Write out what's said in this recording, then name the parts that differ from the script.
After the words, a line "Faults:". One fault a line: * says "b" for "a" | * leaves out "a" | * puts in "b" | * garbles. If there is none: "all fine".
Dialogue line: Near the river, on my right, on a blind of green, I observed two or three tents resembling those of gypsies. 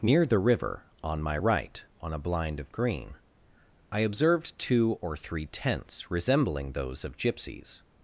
Near the river, on my right, on a blind of green, I observed two or three tents resembling those of gypsies.
Faults:
all fine